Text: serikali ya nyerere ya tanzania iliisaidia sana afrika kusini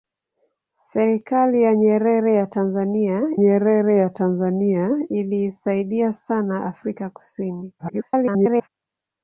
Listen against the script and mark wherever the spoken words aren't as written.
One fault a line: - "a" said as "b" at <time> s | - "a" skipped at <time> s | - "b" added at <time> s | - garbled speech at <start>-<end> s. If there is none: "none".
- "nyerere ya tanzania" added at 3.3 s
- garbled speech at 7.8-8.7 s